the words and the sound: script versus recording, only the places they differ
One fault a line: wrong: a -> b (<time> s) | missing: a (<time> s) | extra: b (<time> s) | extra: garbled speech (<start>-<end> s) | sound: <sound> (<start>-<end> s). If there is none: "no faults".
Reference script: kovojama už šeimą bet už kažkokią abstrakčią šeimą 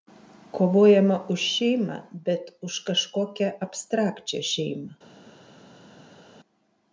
no faults